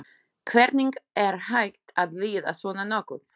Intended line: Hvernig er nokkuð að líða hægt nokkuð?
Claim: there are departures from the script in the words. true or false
true